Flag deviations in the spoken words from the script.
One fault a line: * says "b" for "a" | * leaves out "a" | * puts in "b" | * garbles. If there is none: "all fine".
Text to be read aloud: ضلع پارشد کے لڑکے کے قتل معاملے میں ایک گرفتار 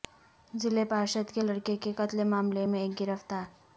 all fine